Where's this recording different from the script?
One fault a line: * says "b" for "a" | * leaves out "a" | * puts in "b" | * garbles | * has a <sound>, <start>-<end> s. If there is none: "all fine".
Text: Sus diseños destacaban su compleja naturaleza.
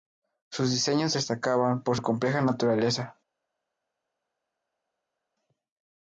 * puts in "por"